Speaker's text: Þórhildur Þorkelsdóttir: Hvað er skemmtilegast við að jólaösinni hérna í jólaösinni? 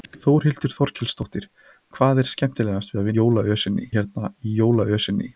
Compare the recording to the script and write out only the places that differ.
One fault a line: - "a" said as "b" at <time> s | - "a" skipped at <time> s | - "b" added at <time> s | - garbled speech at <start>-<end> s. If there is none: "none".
none